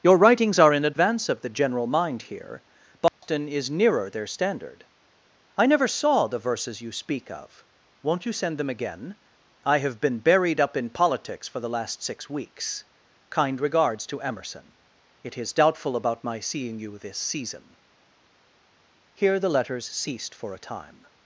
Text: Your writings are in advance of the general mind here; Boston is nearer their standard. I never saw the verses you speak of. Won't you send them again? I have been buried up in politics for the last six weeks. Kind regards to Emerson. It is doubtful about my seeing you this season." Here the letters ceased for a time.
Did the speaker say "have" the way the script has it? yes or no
yes